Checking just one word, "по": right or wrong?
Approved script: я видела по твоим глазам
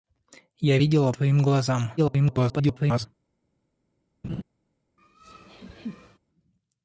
wrong